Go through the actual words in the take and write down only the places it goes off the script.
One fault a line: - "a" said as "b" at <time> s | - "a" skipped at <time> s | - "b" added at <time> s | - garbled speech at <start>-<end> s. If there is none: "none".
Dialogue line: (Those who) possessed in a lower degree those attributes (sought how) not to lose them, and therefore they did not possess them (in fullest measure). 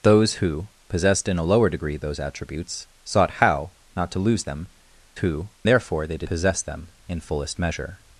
- "and" said as "who" at 5.2 s
- "not" skipped at 6.3 s